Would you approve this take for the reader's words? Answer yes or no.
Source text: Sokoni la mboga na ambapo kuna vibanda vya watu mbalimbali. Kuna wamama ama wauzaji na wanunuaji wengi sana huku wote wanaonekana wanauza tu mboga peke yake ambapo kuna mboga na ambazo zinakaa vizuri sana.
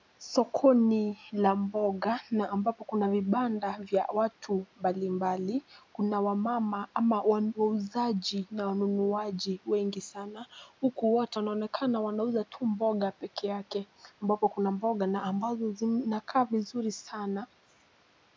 yes